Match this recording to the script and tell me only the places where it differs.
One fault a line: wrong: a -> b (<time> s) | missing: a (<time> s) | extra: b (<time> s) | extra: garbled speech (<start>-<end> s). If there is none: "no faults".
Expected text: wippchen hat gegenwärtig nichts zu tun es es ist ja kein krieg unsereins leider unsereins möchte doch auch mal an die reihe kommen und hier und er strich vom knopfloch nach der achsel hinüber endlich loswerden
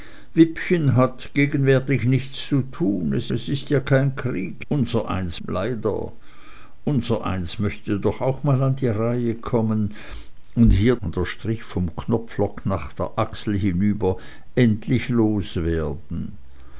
no faults